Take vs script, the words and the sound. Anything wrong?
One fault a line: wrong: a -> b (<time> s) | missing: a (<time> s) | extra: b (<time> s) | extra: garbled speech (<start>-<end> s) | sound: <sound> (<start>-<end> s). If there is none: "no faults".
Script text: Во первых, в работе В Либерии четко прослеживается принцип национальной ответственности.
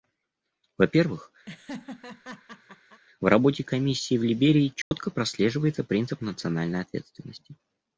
sound: laugh (1.5-3.0 s)
extra: Комиссии (3.6 s)
sound: dropout (4.8-4.9 s)